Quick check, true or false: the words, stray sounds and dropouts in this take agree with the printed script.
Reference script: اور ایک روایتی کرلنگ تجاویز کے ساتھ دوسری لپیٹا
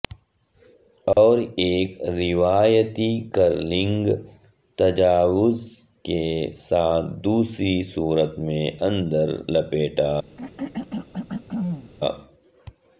false